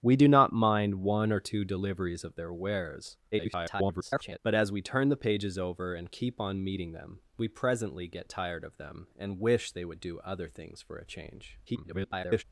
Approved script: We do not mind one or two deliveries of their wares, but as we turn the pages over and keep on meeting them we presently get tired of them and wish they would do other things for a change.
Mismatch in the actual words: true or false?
true